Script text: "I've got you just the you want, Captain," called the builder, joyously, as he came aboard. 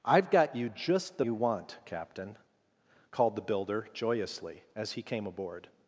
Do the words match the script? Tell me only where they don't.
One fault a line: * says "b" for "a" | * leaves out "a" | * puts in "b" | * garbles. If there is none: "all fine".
all fine